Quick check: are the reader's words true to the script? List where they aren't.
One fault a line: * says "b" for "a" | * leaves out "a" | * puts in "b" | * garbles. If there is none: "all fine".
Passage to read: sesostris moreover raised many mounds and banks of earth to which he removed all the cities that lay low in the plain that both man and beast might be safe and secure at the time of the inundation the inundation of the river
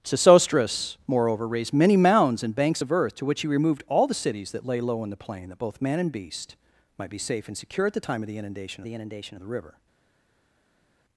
all fine